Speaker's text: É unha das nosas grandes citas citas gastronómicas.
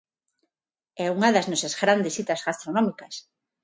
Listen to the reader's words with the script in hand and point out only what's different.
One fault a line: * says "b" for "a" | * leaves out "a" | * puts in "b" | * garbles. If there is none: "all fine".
* leaves out "citas"